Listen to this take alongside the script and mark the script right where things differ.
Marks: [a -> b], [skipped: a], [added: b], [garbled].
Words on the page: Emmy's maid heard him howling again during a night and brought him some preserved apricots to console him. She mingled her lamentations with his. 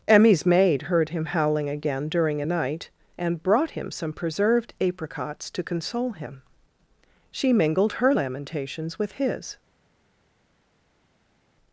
Emmy's maid heard him howling again during a night and brought him some preserved apricots to console him. She mingled her lamentations with his.